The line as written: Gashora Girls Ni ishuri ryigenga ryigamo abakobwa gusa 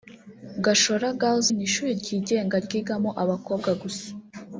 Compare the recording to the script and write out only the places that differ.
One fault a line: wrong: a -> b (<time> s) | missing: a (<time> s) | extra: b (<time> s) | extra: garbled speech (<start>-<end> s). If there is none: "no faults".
no faults